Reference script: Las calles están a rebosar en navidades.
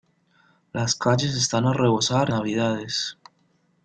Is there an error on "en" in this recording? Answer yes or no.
yes